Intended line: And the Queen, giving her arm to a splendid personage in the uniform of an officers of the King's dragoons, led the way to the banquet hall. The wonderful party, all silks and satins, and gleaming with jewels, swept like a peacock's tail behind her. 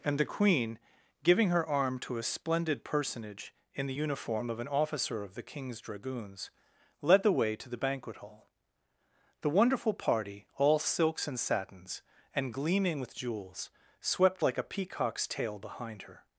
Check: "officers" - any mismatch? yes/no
yes